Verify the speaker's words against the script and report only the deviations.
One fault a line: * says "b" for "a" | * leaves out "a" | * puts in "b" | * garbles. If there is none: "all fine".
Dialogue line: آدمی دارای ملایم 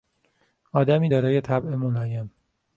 * puts in "طبع"